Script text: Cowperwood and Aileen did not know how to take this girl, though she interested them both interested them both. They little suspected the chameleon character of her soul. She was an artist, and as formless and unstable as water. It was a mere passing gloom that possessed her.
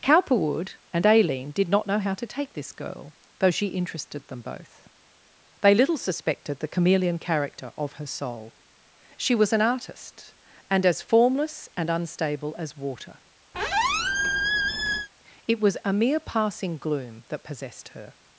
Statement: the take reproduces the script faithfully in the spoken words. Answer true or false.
false